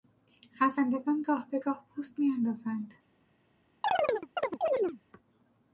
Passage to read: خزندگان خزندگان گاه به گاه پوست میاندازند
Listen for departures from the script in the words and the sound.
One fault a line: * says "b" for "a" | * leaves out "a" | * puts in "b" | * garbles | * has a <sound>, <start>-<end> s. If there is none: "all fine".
* leaves out "خزندگان"
* has a chirp, 3.8-5.0 s